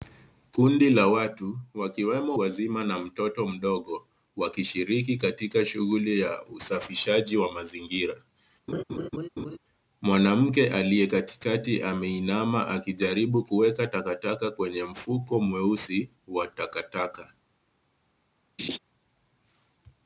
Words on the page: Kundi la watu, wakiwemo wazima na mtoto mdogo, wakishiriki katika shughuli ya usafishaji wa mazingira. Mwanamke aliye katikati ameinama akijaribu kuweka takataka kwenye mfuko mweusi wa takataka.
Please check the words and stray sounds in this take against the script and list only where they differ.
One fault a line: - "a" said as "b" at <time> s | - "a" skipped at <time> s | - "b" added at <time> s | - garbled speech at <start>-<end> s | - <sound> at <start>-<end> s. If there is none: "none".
- laugh at 8.7-9.6 s
- laugh at 18.6-18.8 s